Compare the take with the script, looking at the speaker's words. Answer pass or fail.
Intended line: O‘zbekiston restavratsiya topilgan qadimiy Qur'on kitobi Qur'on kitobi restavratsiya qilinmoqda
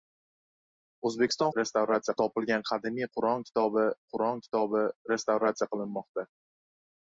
pass